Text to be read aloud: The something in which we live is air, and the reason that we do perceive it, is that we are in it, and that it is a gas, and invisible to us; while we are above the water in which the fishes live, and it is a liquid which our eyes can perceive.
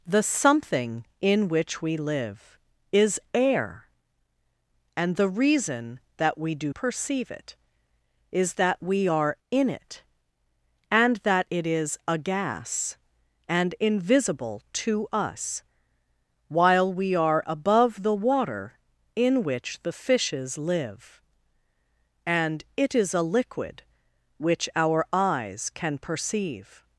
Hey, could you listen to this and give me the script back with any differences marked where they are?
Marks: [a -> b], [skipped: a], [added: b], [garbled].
The something in which we live is air, and the reason that we do perceive it, is that we are in it, and that it is a gas, and invisible to us; while we are above the water in which the fishes live, and it is a liquid which our eyes can perceive.